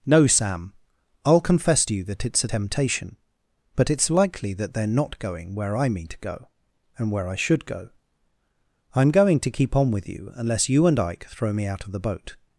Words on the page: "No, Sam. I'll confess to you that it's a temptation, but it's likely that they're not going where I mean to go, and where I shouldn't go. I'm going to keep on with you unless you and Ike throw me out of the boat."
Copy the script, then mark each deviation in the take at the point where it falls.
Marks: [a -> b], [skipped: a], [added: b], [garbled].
"No, Sam. I'll confess to you that it's a temptation, but it's likely that they're not going where I mean to go, and where I [shouldn't -> should] go. I'm going to keep on with you unless you and Ike throw me out of the boat."